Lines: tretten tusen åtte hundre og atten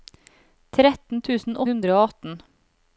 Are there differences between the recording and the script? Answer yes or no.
yes